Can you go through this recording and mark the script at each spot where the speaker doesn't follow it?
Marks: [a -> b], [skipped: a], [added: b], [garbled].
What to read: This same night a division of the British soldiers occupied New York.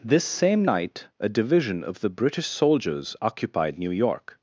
This same night a division of the British soldiers occupied New York.